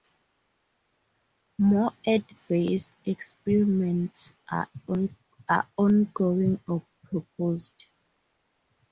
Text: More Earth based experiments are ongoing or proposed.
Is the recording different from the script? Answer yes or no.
no